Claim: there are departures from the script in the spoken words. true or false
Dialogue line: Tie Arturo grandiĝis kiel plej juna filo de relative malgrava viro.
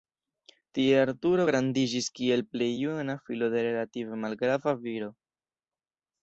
false